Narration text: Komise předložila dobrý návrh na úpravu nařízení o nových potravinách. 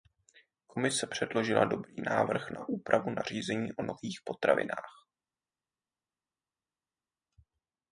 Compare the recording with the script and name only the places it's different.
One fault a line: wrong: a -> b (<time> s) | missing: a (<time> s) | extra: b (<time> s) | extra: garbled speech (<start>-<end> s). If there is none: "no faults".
no faults